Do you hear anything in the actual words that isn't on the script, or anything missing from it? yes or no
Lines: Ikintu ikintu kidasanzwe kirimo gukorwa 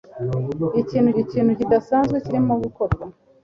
no